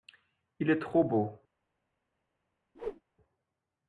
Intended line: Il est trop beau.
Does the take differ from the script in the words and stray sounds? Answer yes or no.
yes